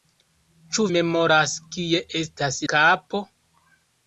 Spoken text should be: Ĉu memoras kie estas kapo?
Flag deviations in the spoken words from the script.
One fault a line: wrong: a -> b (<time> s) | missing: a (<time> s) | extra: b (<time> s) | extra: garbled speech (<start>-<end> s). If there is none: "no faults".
no faults